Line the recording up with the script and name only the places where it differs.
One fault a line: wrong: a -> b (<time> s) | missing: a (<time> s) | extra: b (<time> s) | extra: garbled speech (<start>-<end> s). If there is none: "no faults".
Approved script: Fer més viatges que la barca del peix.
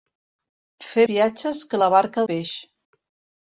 missing: més (1.0 s)
missing: del (2.3 s)